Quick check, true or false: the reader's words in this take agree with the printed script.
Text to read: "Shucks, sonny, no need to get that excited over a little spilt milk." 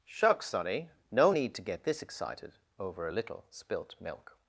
false